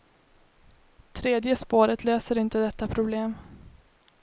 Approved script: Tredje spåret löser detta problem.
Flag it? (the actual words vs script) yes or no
yes